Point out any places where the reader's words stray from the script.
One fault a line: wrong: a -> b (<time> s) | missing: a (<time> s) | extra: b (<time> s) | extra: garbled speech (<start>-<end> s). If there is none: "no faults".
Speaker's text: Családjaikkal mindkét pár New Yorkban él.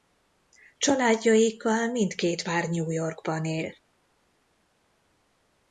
no faults